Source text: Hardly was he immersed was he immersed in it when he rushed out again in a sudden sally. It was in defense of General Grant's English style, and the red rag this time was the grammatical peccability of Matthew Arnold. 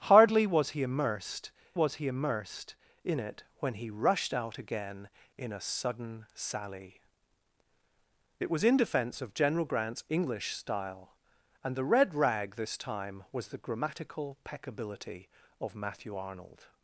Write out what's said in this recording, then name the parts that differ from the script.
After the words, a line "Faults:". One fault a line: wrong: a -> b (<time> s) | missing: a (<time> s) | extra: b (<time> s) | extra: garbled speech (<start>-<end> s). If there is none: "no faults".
Hardly was he immersed was he immersed in it when he rushed out again in a sudden sally. It was in defense of General Grant's English style, and the red rag this time was the grammatical peccability of Matthew Arnold.
Faults:
no faults